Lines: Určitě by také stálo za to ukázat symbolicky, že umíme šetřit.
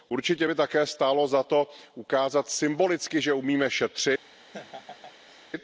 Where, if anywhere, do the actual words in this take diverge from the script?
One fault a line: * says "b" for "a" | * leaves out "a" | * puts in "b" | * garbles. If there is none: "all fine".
all fine